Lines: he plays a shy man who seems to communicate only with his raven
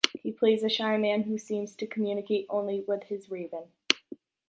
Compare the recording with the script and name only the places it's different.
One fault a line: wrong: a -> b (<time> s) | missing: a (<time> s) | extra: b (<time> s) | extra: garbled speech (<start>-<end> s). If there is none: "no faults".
no faults